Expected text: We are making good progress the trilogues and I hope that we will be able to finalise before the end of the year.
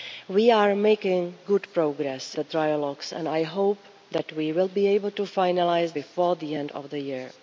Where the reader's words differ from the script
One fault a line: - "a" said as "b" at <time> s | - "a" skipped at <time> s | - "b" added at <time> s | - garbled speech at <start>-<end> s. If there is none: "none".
none